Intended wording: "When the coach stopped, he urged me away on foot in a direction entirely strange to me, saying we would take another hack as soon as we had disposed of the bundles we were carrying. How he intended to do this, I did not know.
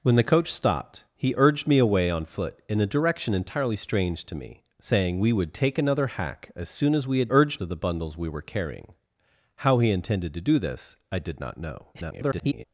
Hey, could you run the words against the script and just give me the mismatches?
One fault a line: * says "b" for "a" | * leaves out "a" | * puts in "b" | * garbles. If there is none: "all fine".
* says "urged" for "disposed"
* garbles